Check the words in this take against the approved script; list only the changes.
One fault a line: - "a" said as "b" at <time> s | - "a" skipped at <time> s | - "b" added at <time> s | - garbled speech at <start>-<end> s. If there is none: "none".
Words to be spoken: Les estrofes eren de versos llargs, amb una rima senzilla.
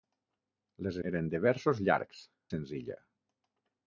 - "estrofes" skipped at 0.9 s
- "amb una rima" skipped at 2.2 s